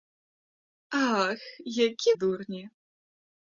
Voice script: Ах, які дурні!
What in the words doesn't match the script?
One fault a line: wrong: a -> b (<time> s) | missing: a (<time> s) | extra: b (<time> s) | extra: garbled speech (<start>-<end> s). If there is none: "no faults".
no faults